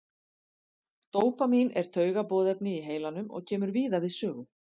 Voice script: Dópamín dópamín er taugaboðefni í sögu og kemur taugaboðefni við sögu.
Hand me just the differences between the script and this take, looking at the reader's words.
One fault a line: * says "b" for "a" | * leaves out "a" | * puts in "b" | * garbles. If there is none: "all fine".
* leaves out "dópamín"
* says "heilanum" for "sögu"
* says "víða" for "taugaboðefni"